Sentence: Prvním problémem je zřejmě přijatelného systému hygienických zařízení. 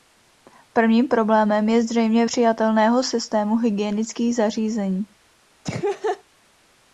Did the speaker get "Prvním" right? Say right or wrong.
right